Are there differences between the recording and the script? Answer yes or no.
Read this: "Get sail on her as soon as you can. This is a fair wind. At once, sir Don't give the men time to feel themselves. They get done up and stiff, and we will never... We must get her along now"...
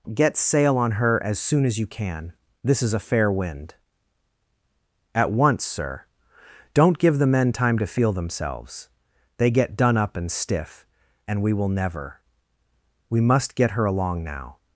no